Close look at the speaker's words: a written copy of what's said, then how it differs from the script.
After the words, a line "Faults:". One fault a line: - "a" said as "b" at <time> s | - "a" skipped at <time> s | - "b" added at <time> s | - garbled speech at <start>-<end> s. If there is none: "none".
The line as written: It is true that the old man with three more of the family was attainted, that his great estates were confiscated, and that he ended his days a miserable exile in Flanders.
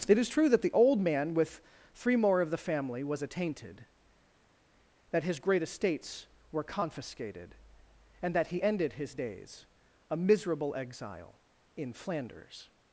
It is true that the old man with three more of the family was attainted, that his great estates were confiscated, and that he ended his days a miserable exile in Flanders.
Faults:
none